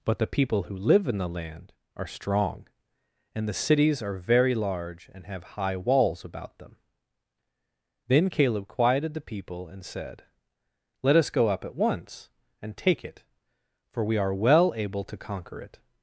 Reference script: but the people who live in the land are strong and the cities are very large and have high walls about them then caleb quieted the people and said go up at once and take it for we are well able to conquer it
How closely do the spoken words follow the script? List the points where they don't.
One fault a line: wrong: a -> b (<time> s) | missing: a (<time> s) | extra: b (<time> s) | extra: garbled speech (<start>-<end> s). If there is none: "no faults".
extra: let us (11.0 s)